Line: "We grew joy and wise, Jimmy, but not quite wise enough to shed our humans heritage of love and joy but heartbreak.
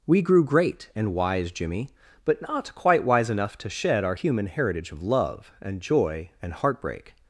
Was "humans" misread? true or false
true